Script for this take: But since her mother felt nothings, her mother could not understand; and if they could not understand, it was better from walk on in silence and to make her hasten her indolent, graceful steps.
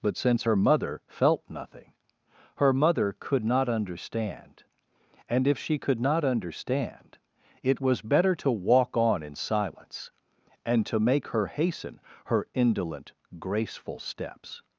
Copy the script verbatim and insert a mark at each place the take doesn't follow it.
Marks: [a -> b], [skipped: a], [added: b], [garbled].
But since her mother felt [nothings, -> nothing] her mother could not understand; and if [they -> she] could not understand, it was better [from -> to] walk on in silence and to make her hasten her indolent, graceful steps.